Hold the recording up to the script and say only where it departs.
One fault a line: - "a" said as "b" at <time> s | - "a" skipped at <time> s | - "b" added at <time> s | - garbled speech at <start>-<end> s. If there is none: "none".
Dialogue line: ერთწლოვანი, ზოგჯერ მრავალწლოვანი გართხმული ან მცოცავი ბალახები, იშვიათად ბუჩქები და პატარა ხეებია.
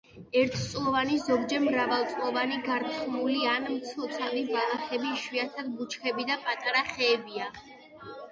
none